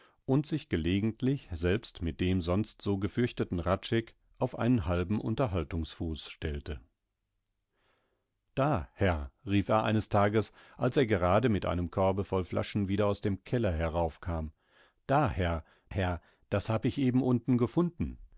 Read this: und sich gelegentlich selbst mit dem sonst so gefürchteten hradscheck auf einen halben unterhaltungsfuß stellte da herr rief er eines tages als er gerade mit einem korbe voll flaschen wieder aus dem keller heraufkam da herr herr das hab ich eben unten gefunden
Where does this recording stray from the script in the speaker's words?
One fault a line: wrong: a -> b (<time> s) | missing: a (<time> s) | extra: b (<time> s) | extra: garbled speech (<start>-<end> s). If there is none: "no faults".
no faults